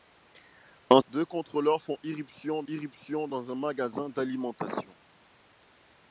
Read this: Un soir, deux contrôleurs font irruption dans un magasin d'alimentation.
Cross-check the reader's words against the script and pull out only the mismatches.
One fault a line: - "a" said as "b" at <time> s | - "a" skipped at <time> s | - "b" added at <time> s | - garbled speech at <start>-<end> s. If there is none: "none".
- "soir" skipped at 1.0 s
- "irruption" added at 2.7 s